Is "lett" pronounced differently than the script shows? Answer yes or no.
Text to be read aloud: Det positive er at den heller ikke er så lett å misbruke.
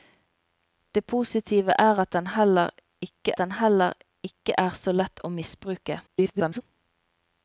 no